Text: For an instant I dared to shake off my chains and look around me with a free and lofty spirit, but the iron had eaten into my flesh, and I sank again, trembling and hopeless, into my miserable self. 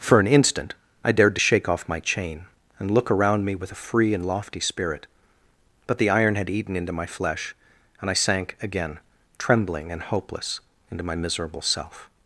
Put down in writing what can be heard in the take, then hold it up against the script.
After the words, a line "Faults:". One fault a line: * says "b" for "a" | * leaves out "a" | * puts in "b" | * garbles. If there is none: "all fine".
For an instant I dared to shake off my chain and look around me with a free and lofty spirit, but the iron had eaten into my flesh, and I sank again, trembling and hopeless, into my miserable self.
Faults:
* says "chain" for "chains"